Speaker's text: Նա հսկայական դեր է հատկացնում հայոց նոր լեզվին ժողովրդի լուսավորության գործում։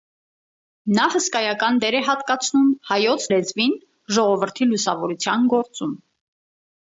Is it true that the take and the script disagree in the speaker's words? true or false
true